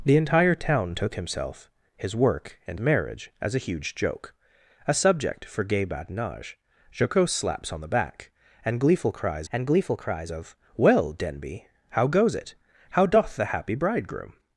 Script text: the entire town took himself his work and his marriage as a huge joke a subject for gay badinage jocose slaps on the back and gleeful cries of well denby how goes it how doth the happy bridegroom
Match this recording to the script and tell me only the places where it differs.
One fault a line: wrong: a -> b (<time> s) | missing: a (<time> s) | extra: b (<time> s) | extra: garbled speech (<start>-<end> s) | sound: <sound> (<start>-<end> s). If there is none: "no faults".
missing: his (2.8 s)
extra: and gleeful cries (9.5 s)